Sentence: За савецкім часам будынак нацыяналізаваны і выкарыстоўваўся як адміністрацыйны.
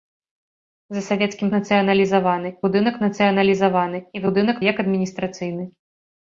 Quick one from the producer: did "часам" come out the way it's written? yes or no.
no